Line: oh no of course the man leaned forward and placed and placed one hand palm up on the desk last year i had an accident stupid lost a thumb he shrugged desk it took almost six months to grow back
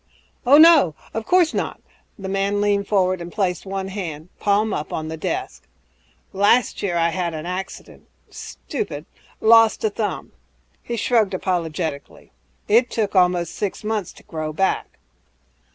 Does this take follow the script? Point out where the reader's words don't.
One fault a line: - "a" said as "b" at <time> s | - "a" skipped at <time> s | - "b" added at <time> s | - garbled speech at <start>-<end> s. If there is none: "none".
- "not" added at 1.5 s
- "and placed" skipped at 3.7 s
- "desk" said as "apologetically" at 11.3 s